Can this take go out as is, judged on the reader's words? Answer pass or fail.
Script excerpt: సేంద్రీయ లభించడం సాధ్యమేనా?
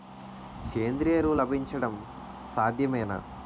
fail